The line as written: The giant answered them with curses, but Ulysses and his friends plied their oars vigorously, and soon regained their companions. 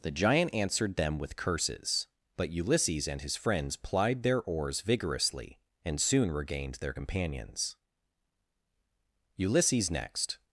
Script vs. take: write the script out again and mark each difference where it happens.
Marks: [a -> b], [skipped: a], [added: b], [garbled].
The giant answered them with curses, but Ulysses and his friends plied their oars vigorously, and soon regained their companions. [added: Ulysses next]